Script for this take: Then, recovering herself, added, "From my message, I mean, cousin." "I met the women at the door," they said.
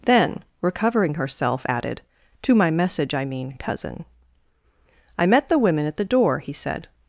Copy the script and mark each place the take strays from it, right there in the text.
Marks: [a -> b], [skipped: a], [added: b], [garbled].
Then, recovering herself, added, ["From -> To] my message, I mean, cousin." "I met the women at the door," [they -> he] said.